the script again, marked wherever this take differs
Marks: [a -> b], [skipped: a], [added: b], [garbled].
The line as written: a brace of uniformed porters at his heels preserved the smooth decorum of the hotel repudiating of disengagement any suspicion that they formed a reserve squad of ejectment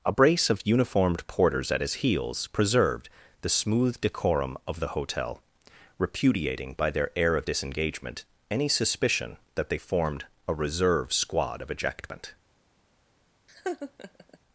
a brace of uniformed porters at his heels preserved the smooth decorum of the hotel repudiating [added: by their air] of disengagement any suspicion that they formed a reserve squad of ejectment